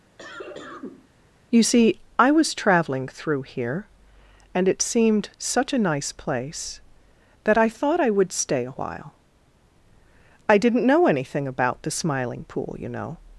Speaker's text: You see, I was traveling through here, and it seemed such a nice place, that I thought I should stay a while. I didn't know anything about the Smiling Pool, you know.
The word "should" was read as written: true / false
false